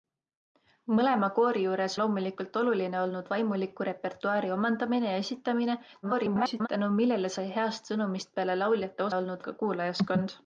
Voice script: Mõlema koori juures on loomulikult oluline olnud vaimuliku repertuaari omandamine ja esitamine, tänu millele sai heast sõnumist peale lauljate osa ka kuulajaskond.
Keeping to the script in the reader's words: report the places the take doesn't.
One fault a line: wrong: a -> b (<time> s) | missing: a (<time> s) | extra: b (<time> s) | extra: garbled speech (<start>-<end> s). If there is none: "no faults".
missing: on (2.0 s)
extra: garbled speech (6.0-6.7 s)
wrong: osa -> olnud (9.1 s)